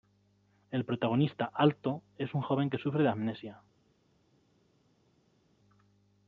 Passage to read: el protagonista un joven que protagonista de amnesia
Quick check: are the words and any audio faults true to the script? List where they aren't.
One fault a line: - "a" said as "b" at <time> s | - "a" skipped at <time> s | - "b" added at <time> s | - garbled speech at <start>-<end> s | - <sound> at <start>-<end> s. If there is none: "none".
- "alto es" added at 1.5 s
- "protagonista" said as "sufre" at 2.8 s